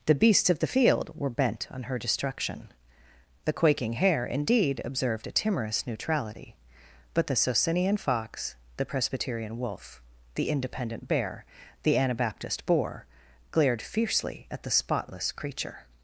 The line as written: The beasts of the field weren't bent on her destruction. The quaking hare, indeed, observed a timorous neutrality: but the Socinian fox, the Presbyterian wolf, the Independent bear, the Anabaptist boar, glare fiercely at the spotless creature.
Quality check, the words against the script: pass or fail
fail